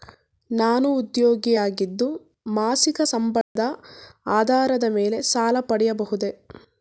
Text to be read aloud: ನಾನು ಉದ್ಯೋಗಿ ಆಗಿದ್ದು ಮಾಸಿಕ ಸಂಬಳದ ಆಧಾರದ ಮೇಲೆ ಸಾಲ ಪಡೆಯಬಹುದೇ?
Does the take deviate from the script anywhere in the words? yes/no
no